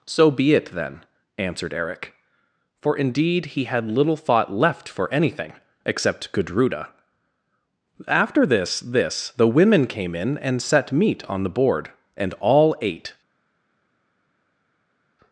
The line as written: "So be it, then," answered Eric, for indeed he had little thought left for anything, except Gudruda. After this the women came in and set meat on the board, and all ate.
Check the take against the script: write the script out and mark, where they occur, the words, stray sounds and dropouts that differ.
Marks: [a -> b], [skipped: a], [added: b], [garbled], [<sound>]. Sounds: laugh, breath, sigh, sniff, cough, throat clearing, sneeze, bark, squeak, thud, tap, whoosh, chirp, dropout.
"So be it, then," answered Eric, for indeed he had little thought left for anything, except Gudruda. After this [added: this] the women came in and set meat on the board, and all ate.